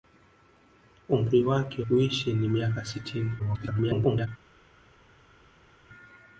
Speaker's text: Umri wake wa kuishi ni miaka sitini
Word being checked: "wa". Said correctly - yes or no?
no